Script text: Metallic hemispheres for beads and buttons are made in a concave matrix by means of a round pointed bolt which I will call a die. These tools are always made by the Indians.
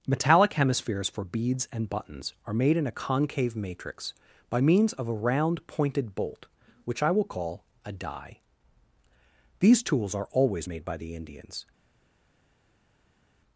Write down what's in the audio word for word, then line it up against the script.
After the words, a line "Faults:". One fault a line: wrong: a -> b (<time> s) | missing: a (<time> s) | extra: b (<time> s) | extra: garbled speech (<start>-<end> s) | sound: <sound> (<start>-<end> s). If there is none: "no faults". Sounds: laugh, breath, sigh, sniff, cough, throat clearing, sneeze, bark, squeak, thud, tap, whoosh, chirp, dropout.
Metallic hemispheres for beads and buttons are made in a concave matrix by means of a round pointed bolt which I will call a die. These tools are always made by the Indians.
Faults:
no faults